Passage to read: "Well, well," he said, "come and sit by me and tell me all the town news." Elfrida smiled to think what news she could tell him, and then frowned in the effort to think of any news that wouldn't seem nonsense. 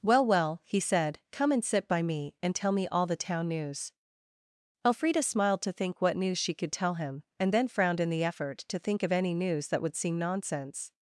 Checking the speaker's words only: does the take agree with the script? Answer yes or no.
no